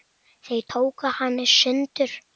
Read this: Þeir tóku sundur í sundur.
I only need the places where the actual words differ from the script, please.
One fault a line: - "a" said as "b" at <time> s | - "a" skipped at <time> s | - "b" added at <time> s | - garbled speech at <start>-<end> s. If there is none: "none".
- "sundur" said as "hana" at 1.2 s